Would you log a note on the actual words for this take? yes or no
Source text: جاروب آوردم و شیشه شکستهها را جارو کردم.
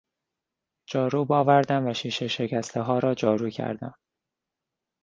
no